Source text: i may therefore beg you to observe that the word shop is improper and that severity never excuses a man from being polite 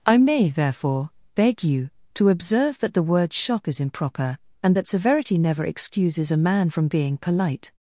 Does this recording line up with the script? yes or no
no